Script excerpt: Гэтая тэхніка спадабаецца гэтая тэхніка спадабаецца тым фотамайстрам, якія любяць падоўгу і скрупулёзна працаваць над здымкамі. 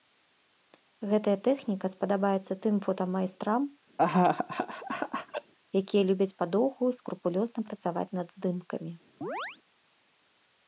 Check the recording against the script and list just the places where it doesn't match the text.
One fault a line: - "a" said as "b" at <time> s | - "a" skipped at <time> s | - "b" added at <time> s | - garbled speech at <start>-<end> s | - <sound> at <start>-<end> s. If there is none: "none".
- "гэтая тэхніка спадабаецца" skipped at 2.5 s
- laugh at 4.0-5.5 s
- chirp at 9.2-9.6 s